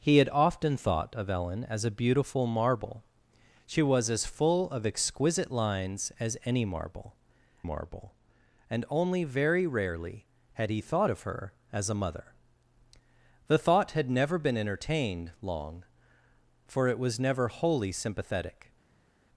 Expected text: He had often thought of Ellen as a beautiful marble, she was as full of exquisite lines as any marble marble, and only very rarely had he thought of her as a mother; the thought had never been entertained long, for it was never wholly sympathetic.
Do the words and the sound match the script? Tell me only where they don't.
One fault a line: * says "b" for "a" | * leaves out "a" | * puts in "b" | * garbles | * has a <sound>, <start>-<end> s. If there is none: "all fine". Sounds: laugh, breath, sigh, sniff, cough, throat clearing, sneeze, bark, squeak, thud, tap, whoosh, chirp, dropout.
all fine